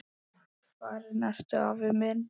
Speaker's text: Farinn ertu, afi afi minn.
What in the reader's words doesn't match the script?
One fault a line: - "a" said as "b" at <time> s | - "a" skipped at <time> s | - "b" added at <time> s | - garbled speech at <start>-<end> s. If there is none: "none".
- "afi" skipped at 1.9 s